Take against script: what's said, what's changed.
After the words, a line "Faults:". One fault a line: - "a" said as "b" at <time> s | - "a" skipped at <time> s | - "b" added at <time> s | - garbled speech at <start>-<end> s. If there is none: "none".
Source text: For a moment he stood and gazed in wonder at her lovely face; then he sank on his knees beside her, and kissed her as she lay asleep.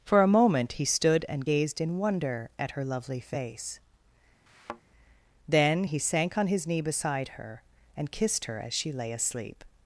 For a moment he stood and gazed in wonder at her lovely face; then he sank on his knee beside her, and kissed her as she lay asleep.
Faults:
- "knees" said as "knee" at 6.7 s